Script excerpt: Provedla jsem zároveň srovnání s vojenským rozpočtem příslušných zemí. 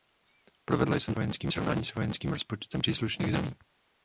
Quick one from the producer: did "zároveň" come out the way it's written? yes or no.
no